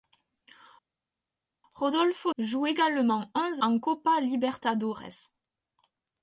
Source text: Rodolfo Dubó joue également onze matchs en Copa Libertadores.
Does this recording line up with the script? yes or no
no